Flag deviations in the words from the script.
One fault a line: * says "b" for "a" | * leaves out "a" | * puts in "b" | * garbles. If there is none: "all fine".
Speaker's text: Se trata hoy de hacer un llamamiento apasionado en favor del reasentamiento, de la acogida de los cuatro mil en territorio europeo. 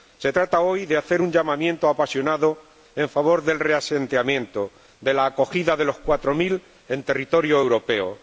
all fine